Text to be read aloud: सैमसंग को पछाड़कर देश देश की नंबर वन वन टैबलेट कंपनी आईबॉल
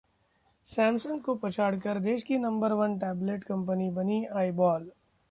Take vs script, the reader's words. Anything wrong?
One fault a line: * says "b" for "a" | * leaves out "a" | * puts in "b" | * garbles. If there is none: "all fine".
* leaves out "देश"
* leaves out "वन"
* puts in "बनी"